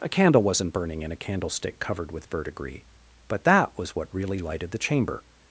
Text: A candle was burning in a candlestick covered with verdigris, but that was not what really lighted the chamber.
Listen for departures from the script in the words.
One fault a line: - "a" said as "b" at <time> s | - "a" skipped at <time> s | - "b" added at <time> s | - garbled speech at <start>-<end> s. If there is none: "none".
- "was" said as "wasn't" at 0.4 s
- "not" skipped at 4.0 s